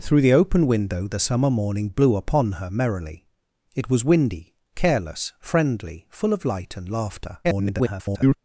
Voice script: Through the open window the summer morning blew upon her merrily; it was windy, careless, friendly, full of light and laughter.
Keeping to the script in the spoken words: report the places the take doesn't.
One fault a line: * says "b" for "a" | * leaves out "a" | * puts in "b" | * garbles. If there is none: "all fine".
* garbles